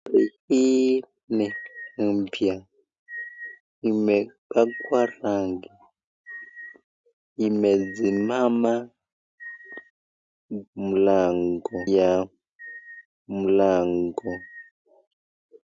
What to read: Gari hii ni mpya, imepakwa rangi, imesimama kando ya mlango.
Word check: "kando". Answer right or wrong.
wrong